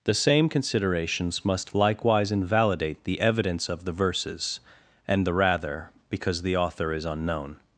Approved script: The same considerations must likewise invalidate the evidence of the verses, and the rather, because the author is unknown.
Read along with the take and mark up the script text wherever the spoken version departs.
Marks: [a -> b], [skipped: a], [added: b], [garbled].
The same considerations must likewise invalidate the evidence of the verses, and the rather, because the author is unknown.